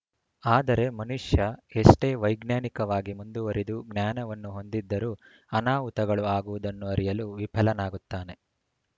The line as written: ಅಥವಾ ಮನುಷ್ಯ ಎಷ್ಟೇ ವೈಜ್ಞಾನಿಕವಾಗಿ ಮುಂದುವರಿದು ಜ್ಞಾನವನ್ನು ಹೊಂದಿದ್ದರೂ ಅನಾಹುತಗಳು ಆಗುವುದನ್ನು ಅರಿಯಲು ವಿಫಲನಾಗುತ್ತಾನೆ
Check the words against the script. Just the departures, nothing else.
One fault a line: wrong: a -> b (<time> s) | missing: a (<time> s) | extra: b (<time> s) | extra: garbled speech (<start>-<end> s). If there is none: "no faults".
wrong: ಅಥವಾ -> ಆದರೆ (0.4 s)